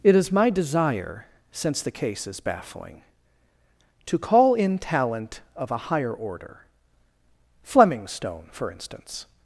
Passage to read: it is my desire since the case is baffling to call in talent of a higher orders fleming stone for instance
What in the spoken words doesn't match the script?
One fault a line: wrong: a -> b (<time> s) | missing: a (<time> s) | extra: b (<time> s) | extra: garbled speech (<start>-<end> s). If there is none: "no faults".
wrong: orders -> order (6.1 s)